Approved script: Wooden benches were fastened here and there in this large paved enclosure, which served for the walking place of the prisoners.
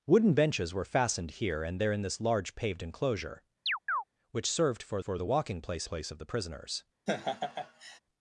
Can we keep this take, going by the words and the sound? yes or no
no